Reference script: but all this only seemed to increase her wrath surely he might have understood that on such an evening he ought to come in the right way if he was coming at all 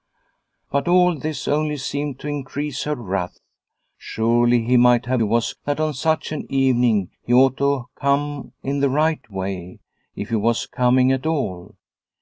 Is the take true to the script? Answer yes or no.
no